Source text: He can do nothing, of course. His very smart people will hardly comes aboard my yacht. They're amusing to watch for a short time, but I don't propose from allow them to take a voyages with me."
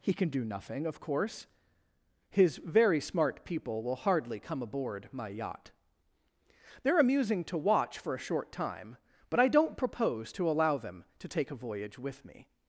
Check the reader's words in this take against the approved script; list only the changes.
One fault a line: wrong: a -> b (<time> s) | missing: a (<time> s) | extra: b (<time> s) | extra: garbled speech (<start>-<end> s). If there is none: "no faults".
wrong: comes -> come (4.4 s)
wrong: from -> to (10.3 s)
wrong: voyages -> voyage (11.6 s)